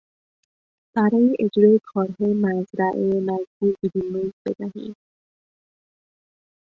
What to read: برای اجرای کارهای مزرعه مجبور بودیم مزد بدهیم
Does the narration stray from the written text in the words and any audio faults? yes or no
no